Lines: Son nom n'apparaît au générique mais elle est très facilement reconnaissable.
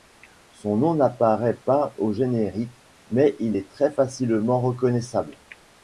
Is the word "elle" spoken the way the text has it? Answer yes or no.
no